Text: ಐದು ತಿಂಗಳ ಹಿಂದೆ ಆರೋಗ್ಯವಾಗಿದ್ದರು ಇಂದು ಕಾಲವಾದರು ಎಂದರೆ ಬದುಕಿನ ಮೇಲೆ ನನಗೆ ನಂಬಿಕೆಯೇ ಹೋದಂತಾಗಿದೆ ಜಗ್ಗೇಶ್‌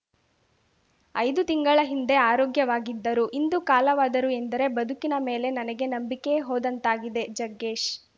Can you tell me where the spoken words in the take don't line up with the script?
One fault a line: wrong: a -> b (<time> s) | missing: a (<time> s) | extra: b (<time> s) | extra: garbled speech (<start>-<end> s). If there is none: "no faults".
no faults